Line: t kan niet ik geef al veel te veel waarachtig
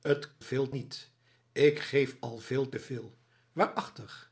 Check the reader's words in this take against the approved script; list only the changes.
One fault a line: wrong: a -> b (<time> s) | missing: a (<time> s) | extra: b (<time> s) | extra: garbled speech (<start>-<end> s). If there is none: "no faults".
wrong: kan -> veel (0.4 s)